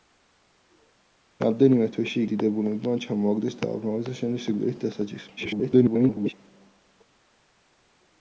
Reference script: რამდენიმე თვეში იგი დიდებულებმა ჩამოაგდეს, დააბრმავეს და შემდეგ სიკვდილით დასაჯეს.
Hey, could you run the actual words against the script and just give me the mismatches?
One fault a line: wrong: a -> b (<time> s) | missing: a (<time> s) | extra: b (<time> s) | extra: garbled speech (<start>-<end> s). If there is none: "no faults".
missing: იგი (2.2 s)
extra: garbled speech (5.4-6.3 s)